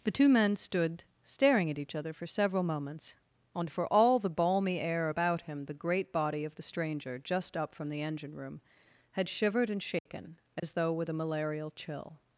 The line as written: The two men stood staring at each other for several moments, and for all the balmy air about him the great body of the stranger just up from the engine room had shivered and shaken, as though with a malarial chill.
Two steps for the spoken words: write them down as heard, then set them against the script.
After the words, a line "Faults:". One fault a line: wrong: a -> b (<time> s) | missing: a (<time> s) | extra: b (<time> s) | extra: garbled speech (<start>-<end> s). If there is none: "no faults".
The two men stood staring at each other for several moments, and for all the balmy air about him the great body of the stranger just up from the engine room had shivered and shaken, as though with a malarial chill.
Faults:
no faults